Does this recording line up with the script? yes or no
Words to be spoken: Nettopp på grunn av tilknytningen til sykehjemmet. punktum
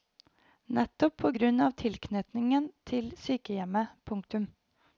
yes